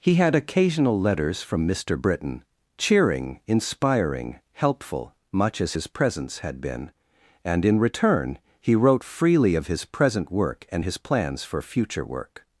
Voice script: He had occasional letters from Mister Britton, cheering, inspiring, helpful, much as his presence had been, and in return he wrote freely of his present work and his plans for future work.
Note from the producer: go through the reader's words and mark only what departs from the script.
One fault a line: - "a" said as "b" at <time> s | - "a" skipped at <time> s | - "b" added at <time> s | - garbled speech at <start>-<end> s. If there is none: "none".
none